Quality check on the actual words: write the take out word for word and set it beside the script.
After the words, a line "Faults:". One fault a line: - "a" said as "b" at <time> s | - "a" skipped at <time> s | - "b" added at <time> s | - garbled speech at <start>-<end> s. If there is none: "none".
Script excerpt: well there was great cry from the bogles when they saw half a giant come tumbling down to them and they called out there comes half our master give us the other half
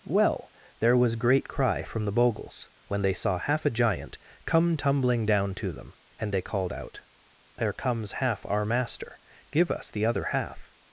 well there was great cry from the bogles when they saw half a giant come tumbling down to them and they called out there comes half our master give us the other half
Faults:
none